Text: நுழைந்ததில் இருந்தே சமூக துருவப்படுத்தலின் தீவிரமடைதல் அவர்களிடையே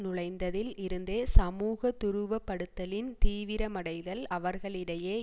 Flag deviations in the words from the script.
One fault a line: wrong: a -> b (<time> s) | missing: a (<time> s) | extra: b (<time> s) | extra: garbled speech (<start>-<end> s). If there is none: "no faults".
no faults